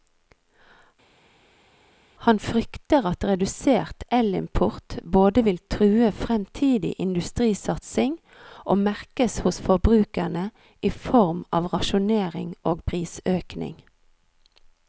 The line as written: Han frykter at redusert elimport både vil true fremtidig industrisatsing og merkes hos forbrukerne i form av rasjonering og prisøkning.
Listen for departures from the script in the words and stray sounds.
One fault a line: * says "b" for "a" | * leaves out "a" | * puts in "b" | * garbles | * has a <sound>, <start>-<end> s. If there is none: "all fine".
all fine